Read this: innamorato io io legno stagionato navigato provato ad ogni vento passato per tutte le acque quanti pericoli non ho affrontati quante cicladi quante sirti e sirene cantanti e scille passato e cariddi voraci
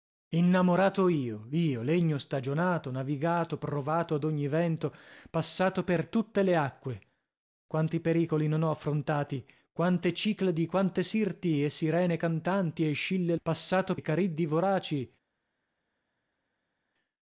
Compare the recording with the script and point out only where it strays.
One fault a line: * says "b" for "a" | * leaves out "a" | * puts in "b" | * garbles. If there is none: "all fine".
all fine